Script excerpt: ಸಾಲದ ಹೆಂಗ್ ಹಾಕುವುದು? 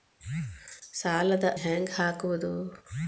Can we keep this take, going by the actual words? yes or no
yes